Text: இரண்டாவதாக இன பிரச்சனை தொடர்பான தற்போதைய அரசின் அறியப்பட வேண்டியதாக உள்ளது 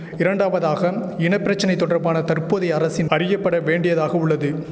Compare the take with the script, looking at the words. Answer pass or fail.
pass